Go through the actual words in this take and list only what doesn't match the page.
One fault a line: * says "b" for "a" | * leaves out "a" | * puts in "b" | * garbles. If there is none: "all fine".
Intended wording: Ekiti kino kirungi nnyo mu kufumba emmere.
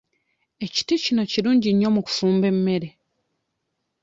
all fine